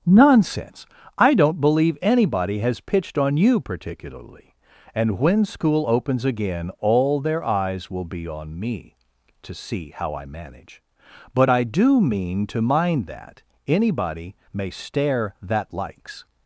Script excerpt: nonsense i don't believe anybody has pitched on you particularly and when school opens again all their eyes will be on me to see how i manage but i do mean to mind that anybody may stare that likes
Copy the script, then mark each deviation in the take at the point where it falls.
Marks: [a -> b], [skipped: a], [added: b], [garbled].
nonsense i don't believe anybody has pitched on you particularly and when school opens again all their eyes will be on me to see how i manage but i do mean to mind that anybody may stare that likes